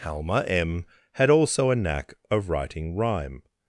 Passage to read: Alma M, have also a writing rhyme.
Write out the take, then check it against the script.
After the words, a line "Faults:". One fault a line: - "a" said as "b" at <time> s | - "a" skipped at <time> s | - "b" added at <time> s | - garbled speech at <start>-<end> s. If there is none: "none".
Alma M, had also a knack of writing rhyme.
Faults:
- "have" said as "had" at 1.1 s
- "knack of" added at 1.8 s